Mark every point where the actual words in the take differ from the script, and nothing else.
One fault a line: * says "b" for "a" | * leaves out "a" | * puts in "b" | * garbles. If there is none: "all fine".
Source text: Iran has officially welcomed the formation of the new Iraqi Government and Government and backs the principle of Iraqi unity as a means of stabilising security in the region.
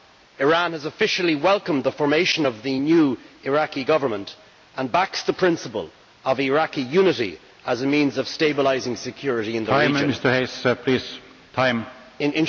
* leaves out "Government and"